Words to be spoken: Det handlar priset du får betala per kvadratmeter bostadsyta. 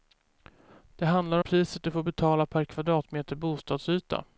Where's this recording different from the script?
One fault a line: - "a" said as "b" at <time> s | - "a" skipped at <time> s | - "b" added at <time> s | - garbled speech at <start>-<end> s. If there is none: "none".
none